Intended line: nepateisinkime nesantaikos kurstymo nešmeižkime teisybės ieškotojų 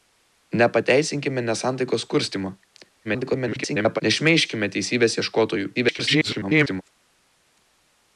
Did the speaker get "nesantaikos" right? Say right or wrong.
right